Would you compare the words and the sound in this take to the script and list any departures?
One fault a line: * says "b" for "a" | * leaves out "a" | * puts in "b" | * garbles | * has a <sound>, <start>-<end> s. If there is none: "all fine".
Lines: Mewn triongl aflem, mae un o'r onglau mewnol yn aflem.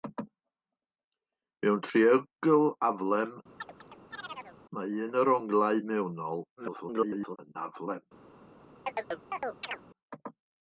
* has a chirp, 3.6-4.6 s
* garbles
* has a chirp, 8.9-9.8 s